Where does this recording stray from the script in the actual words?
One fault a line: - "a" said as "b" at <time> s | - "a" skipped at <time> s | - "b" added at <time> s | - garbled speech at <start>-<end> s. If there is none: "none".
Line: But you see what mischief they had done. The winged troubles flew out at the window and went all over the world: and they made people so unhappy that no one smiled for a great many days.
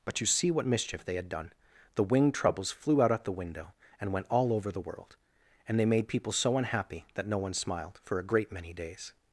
none